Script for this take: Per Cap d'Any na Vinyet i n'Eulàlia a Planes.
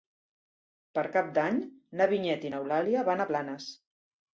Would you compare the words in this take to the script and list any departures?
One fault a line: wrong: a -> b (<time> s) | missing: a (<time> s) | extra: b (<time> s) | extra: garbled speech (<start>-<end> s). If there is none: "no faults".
extra: van (3.1 s)